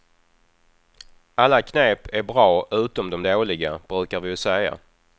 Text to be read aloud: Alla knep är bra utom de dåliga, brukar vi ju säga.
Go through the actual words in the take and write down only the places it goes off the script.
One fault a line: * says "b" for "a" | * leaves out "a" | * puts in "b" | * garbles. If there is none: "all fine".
all fine